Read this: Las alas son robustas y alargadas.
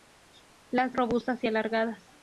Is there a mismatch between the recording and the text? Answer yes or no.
yes